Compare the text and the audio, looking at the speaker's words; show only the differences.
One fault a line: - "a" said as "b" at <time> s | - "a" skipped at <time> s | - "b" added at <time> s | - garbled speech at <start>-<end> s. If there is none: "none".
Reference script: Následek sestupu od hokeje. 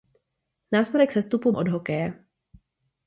none